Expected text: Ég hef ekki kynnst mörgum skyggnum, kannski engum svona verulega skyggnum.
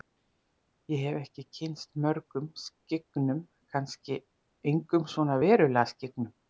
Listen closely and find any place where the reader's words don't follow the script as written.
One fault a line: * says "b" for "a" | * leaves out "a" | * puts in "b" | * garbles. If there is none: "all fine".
all fine